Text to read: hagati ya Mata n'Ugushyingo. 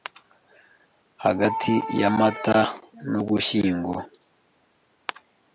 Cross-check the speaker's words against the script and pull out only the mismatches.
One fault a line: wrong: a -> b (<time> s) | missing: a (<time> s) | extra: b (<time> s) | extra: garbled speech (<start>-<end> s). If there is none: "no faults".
no faults